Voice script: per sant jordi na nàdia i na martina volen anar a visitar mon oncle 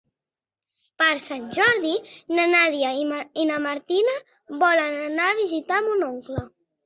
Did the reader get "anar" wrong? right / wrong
right